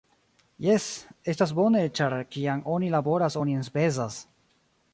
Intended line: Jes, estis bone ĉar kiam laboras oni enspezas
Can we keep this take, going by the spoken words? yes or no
no